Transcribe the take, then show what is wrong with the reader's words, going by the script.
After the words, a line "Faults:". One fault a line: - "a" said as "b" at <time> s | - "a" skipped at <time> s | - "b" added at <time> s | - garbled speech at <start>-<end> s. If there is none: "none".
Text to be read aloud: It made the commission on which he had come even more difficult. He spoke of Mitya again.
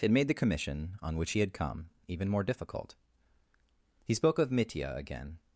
It made the commission on which he had come even more difficult. He spoke of Mitya again.
Faults:
none